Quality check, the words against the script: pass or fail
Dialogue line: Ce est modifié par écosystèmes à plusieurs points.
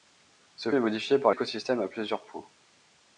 pass